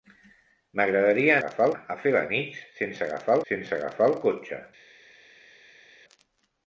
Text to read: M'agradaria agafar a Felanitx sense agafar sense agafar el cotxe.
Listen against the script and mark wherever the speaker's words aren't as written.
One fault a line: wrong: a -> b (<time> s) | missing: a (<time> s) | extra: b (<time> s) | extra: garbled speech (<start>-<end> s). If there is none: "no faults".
no faults